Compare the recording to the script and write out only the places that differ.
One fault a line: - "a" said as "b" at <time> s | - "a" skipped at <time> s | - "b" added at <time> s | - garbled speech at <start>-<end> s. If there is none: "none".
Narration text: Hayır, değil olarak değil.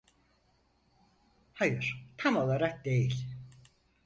- "değil" said as "tam" at 2.2 s